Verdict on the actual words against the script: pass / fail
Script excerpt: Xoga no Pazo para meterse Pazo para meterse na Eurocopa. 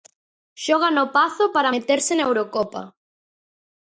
fail